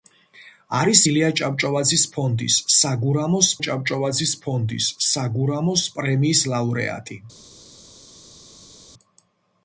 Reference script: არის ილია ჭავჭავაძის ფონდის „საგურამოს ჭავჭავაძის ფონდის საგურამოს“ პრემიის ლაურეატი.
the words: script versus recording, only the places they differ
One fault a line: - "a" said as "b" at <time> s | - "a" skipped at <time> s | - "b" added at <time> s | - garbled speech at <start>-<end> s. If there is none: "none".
none